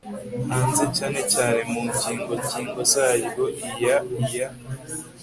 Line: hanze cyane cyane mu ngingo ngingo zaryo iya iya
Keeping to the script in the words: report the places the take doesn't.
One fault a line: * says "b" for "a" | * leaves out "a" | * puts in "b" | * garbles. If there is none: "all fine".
all fine